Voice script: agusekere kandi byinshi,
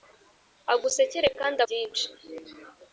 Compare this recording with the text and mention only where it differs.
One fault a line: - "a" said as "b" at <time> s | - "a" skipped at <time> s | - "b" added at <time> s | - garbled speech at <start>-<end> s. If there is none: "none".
none